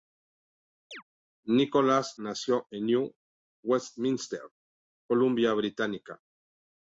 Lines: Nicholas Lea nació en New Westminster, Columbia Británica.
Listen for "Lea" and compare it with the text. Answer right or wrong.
wrong